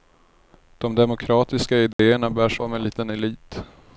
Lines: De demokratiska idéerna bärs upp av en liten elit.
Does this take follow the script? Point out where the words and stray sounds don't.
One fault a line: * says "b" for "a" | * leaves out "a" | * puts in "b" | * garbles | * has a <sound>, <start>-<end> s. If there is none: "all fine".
* has a dropout, 1.9-2.0 s
* leaves out "upp"